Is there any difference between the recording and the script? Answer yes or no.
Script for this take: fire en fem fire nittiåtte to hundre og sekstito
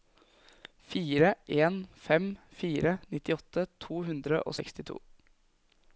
no